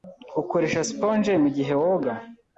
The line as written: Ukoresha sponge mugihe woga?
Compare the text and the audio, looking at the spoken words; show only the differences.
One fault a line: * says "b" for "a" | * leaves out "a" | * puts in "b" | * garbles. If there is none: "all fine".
all fine